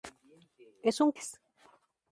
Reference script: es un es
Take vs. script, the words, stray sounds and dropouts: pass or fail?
pass